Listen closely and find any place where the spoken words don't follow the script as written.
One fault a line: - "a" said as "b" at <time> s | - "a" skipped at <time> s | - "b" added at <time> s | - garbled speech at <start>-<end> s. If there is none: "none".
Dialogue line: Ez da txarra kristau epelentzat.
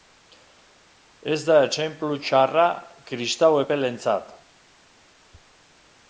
- "etsenplu" added at 1.6 s